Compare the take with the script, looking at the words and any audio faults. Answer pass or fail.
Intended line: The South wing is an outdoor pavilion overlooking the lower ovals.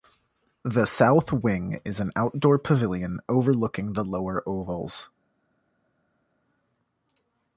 pass